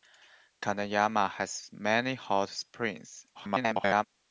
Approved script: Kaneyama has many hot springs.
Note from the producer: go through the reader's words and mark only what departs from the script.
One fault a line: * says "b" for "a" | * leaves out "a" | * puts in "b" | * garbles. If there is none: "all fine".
* garbles